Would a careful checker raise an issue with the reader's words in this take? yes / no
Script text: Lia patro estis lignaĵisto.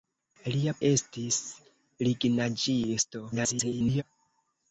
yes